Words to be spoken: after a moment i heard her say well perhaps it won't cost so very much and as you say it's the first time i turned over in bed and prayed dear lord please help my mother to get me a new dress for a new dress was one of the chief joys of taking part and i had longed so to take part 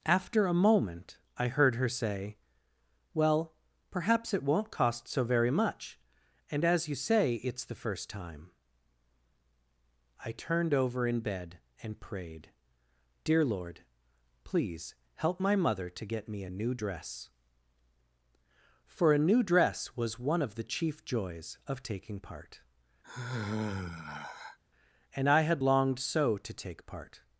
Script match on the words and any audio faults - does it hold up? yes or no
no